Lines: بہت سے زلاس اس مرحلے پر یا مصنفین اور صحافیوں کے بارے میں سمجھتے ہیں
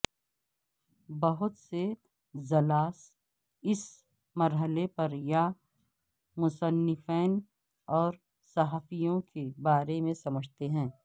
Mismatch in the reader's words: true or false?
false